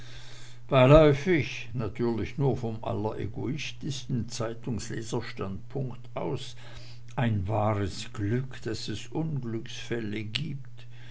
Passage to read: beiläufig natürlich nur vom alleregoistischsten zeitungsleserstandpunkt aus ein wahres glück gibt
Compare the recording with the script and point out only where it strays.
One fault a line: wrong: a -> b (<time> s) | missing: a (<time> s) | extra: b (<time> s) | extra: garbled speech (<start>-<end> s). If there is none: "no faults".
extra: daß es unglücksfälle (8.6 s)